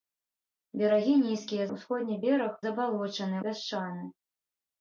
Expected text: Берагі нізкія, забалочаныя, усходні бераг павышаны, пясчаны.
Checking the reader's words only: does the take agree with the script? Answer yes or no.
no